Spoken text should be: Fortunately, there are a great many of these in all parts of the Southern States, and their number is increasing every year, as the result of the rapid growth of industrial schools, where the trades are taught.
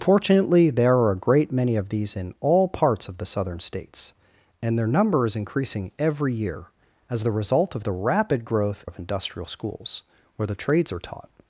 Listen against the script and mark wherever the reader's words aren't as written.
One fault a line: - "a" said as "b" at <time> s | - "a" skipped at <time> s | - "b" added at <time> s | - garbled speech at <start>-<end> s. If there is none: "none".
none